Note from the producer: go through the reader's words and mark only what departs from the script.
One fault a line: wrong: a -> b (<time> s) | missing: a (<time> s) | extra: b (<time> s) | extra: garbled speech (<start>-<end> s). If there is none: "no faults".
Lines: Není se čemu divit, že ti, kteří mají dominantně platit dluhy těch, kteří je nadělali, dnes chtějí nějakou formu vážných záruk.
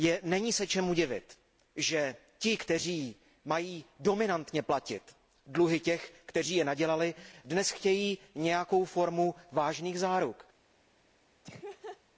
no faults